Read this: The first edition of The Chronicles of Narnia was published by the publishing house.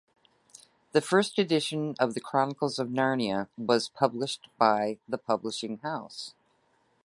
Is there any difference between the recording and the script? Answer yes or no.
no